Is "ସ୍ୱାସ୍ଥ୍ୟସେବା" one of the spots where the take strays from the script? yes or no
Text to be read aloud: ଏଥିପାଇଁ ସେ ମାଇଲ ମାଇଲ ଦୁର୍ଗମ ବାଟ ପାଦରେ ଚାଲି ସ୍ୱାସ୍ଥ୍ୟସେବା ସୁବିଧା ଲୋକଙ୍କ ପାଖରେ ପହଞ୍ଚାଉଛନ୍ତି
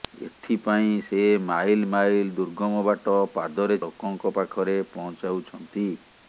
yes